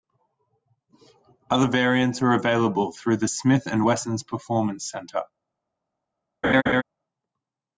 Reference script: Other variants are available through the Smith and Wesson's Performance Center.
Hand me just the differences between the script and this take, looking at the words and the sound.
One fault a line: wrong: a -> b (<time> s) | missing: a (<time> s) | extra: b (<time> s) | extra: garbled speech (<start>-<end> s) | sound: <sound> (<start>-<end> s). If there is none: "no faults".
sound: laugh (6.4-6.8 s)